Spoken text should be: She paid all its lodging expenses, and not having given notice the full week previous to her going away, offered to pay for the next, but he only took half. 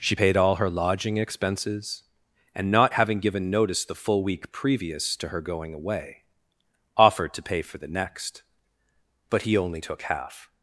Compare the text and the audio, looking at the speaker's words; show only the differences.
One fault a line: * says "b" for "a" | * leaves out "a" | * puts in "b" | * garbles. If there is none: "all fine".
* says "her" for "its"